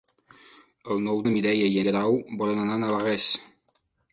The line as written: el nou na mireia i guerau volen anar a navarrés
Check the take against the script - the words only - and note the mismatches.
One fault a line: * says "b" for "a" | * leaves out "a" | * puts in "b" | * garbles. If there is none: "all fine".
all fine